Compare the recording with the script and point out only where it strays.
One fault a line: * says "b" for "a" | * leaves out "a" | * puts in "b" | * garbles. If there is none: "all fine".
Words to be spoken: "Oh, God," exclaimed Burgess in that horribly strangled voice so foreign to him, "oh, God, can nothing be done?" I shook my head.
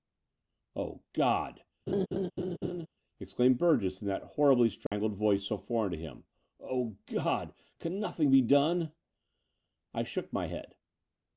all fine